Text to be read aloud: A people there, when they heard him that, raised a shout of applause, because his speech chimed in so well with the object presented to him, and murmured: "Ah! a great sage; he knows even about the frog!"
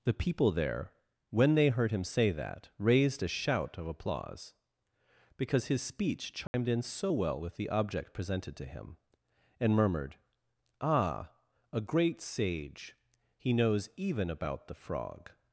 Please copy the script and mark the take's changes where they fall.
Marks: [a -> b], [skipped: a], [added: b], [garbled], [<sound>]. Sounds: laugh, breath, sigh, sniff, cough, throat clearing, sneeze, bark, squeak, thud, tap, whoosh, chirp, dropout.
[A -> The] people there, when they heard him [added: say] that, raised a shout of applause, because his speech chimed [dropout] in so well with the object presented to him, and murmured: "Ah! a great sage; he knows even about the frog!"